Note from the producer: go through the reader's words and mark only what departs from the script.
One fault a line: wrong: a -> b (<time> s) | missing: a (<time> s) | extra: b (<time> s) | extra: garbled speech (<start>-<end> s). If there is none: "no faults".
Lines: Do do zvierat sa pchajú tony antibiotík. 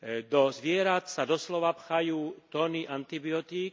missing: do (0.5 s)
extra: doslova (1.3 s)